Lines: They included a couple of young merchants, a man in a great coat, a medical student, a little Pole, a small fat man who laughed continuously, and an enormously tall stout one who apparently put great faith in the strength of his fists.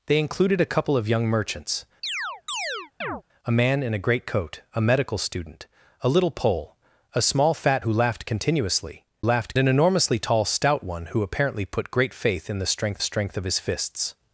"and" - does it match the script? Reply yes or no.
no